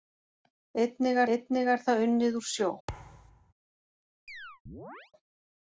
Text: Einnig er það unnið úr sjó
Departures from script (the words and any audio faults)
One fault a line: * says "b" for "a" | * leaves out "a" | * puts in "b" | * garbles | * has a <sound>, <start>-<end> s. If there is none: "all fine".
* puts in "einnig"
* has a thud, 2.9-3.5 s
* has a chirp, 4.3-5.1 s